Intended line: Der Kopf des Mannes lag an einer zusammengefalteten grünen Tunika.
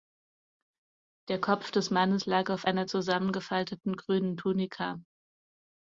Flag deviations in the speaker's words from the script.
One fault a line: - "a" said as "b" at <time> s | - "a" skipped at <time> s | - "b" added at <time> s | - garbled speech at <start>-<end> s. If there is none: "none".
- "an" said as "auf" at 2.5 s